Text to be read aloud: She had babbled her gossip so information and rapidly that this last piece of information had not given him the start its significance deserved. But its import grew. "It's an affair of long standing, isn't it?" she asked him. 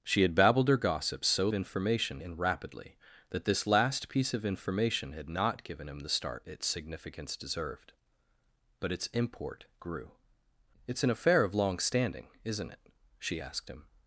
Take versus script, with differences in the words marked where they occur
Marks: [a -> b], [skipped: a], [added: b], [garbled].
She had babbled her gossip so information and rapidly that this last piece of information had not given him the start its significance deserved. But its import grew. "It's an affair of long standing, isn't it?" she asked him.